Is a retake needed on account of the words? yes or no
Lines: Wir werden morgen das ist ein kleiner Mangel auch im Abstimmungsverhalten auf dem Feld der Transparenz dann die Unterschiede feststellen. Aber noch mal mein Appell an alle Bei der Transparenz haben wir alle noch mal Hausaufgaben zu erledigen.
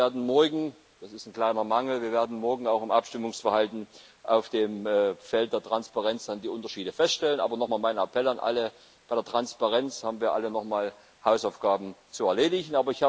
no